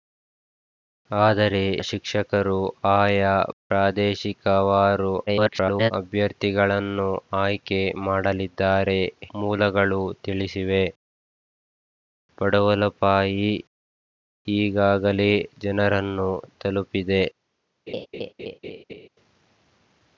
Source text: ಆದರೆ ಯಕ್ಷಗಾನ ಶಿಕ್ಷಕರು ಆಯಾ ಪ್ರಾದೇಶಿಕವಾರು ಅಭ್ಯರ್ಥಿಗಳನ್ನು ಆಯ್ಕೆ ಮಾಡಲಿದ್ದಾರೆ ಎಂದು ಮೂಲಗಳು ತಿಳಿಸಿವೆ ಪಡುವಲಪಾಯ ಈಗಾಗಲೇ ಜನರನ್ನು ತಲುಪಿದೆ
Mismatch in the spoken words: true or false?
true